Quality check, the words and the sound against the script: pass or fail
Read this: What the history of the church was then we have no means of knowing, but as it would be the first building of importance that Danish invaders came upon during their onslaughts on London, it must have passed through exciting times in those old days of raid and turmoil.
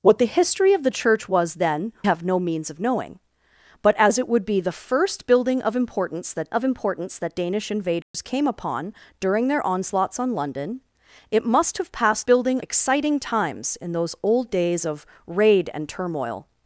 fail